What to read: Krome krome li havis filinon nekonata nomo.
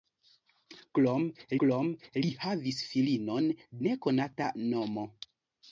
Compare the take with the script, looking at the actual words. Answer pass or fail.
pass